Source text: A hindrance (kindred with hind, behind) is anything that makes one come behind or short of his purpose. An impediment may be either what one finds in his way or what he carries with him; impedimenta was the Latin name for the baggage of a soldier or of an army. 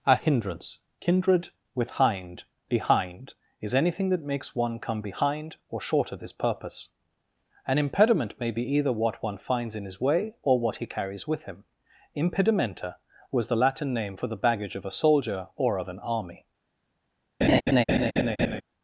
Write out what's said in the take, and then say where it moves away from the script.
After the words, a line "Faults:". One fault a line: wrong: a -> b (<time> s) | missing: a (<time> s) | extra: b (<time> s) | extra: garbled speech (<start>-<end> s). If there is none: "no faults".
A hindrance (kindred with hind, behind) is anything that makes one come behind or short of his purpose. An impediment may be either what one finds in his way or what he carries with him; impedimenta was the Latin name for the baggage of a soldier or of an army.
Faults:
no faults